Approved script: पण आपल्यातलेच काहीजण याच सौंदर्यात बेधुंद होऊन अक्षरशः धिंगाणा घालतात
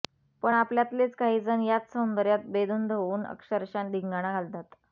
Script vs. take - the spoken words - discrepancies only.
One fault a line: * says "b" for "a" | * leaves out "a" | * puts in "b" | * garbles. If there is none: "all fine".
all fine